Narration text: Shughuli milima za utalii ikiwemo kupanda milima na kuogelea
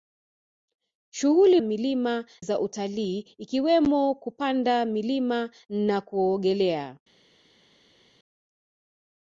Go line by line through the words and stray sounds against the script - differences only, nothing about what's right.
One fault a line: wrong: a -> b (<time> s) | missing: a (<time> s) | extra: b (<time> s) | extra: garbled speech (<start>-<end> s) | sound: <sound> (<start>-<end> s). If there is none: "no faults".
no faults